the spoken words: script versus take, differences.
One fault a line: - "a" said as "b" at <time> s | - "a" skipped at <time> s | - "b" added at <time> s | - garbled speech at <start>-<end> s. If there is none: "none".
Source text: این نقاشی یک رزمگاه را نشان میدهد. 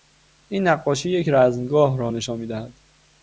none